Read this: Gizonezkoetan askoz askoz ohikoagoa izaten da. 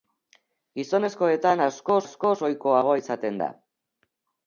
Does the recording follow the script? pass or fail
pass